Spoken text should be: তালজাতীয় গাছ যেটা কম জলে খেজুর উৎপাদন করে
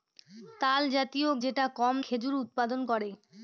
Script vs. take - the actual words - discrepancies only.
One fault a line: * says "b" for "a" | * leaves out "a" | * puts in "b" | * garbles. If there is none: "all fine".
* leaves out "গাছ"
* leaves out "জলে"